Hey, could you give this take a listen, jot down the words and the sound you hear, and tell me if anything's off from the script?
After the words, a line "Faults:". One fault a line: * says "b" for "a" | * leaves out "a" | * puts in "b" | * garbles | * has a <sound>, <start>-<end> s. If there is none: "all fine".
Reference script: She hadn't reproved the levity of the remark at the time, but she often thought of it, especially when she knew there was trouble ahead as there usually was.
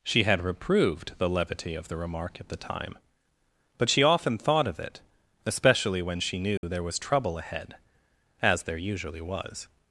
She had reproved the levity of the remark at the time, but she often thought of it, especially when she knew there was trouble ahead as there usually was.
Faults:
* says "had" for "hadn't"
* has a dropout, 6.6-6.6 s